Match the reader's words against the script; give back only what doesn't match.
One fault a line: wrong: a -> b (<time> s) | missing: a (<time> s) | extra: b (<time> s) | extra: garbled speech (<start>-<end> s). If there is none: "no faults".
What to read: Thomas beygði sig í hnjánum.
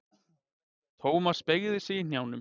no faults